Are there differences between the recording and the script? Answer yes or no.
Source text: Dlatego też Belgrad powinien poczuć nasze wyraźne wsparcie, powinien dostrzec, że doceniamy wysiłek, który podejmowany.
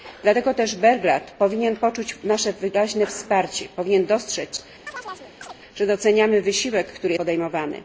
no